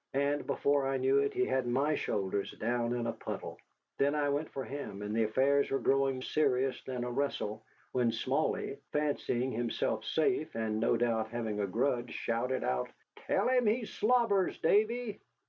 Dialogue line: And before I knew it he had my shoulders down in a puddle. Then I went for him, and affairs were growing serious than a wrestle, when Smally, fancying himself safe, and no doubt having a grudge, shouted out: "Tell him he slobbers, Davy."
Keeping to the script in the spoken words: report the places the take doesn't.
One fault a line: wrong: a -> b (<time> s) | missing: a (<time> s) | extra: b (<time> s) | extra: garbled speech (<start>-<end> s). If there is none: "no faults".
no faults